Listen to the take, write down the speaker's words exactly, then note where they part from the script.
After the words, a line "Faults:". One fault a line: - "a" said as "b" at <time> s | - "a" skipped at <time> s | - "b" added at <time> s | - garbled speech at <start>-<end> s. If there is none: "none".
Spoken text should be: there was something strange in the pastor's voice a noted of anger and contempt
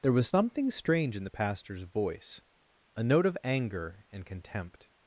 there was something strange in the pastor's voice a note of anger and contempt
Faults:
- "noted" said as "note" at 3.0 s